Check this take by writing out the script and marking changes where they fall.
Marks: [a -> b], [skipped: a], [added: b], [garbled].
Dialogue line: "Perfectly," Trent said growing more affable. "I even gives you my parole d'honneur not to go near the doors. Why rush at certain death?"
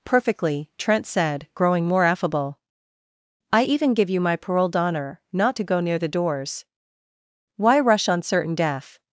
"Perfectly," Trent said growing more affable. "I even [gives -> give] you my parole d'honneur not to go near the doors. Why rush [at -> on] certain death?"